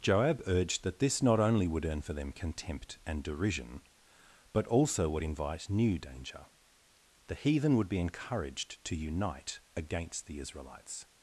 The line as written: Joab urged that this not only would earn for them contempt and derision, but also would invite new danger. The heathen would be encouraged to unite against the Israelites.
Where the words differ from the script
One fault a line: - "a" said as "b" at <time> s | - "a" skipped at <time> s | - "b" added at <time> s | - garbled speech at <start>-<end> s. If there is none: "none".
none